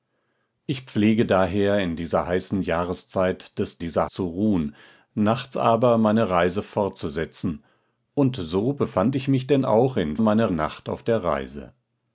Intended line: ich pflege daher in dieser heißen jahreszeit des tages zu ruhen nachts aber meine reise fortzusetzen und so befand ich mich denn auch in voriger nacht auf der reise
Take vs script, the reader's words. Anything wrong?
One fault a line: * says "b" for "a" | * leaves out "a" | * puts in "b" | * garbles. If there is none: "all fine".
* says "dieser" for "tages"
* says "meine" for "voriger"